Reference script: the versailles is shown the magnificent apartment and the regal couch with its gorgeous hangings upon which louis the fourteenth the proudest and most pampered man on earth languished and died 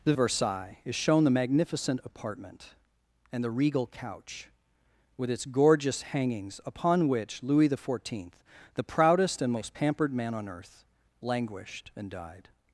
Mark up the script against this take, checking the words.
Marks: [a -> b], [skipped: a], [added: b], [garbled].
the versailles is shown the magnificent apartment and the regal couch with its gorgeous hangings upon which louis the fourteenth the proudest and most pampered man on earth languished and died